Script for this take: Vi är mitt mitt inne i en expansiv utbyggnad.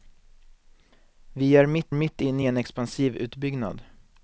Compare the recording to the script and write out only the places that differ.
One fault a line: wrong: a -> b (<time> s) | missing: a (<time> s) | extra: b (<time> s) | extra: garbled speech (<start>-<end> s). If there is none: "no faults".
no faults